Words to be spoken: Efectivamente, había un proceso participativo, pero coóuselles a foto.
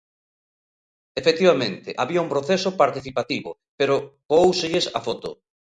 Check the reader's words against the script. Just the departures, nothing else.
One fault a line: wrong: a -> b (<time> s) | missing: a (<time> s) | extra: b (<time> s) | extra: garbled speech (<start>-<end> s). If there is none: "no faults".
no faults